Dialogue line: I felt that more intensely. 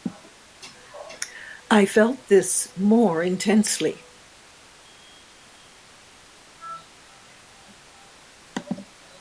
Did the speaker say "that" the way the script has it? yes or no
no